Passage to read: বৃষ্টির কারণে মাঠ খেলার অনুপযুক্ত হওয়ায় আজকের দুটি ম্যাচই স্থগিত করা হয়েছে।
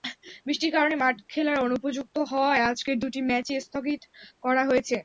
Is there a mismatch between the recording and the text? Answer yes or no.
no